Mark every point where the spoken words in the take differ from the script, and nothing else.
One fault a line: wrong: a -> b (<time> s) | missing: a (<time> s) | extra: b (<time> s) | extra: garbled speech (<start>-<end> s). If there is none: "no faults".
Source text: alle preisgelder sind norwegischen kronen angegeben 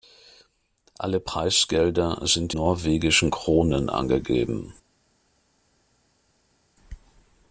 no faults